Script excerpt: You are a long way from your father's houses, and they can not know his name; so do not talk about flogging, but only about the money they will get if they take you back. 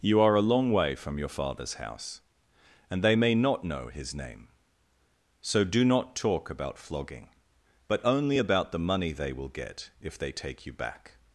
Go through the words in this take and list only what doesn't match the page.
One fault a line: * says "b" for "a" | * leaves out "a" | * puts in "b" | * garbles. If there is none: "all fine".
* says "house" for "houses"
* says "may" for "can"